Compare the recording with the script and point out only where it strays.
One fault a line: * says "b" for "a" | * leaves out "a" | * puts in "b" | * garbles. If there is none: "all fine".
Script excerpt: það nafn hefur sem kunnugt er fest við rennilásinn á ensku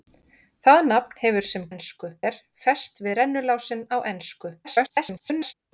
* says "ensku" for "kunnugt"
* garbles